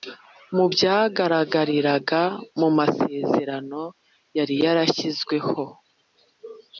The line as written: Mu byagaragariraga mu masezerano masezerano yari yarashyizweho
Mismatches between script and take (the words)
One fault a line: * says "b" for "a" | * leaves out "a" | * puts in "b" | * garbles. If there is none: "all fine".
* leaves out "masezerano"